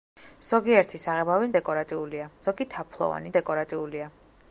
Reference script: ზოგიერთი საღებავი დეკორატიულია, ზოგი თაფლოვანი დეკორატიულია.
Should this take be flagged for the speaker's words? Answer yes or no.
no